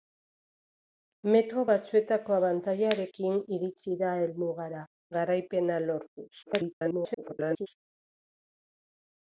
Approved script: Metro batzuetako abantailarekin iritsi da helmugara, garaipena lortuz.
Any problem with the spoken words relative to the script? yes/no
yes